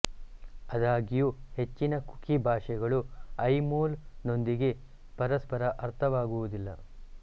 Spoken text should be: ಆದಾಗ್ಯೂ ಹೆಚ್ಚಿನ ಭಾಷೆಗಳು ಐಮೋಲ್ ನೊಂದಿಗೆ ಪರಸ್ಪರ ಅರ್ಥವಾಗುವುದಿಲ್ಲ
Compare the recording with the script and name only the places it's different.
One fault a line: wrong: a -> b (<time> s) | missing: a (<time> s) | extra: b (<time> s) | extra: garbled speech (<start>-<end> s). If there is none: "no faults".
extra: ಕುಕಿ (2.1 s)